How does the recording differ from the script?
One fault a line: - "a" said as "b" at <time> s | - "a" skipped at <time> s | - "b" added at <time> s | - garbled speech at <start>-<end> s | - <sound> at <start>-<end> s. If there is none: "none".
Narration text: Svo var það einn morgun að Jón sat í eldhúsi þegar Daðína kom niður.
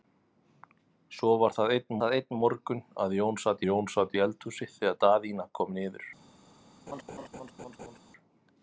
- "það einn" added at 2.0 s
- "Jón sat" added at 3.7 s
- laugh at 6.9-8.0 s